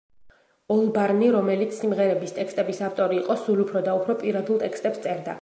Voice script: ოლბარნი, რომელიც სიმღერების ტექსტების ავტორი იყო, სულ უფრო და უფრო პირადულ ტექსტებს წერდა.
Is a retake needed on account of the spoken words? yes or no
no